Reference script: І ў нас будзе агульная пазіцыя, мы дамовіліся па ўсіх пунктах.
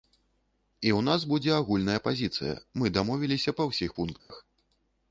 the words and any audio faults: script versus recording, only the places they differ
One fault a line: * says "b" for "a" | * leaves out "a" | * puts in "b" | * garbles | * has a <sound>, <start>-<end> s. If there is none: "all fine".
* has a dropout, 4.2-4.3 s